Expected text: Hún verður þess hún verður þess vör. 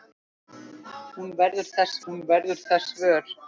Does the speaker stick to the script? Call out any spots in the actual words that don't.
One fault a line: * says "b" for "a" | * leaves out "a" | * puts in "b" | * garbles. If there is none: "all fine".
all fine